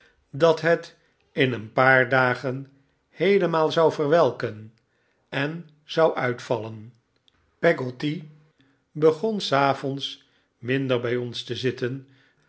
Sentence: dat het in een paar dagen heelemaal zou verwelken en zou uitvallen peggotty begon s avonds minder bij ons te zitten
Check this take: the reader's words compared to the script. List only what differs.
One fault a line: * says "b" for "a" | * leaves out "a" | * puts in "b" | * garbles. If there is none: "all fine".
all fine